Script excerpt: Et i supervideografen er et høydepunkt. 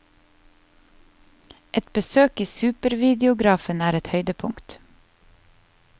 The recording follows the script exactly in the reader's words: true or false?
false